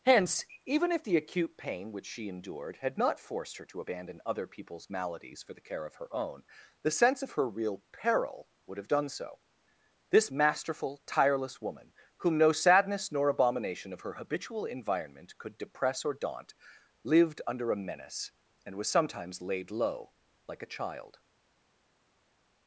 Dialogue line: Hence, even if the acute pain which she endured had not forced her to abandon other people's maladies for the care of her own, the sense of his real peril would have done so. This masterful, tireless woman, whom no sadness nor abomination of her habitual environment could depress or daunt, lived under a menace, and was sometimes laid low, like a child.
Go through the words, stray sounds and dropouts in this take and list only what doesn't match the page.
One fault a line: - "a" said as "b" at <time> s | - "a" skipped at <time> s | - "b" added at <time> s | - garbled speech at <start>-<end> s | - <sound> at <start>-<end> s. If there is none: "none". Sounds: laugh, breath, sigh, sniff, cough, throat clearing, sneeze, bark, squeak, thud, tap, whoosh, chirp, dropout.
- "his" said as "her" at 7.3 s